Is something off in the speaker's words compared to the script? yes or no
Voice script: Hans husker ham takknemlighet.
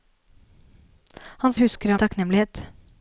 no